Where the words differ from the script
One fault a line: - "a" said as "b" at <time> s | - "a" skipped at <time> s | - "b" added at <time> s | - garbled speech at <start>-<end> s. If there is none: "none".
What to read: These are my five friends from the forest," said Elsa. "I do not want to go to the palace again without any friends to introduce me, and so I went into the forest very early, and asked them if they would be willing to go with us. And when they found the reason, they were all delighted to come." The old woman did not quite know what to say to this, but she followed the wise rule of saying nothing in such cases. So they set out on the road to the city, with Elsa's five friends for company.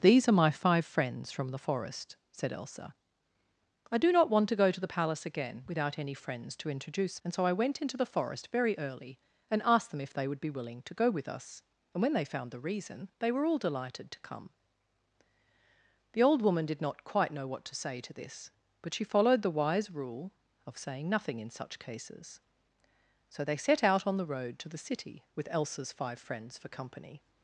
- "me" skipped at 7.2 s